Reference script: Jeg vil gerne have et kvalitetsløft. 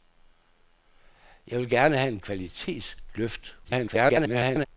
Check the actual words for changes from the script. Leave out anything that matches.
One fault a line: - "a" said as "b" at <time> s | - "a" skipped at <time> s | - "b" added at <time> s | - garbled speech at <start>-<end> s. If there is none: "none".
- garbled speech at 3.6-4.7 s